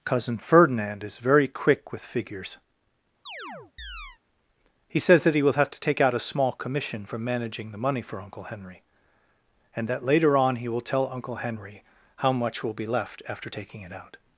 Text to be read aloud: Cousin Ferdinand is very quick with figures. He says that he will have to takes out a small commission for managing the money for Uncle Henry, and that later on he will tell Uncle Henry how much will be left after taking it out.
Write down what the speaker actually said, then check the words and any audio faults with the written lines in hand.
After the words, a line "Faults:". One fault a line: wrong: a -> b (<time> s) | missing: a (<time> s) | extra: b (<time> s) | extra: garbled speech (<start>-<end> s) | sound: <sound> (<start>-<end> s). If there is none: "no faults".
Cousin Ferdinand is very quick with figures. He says that he will have to take out a small commission for managing the money for Uncle Henry, and that later on he will tell Uncle Henry how much will be left after taking it out.
Faults:
sound: chirp (3.3-4.2 s)
wrong: takes -> take (5.8 s)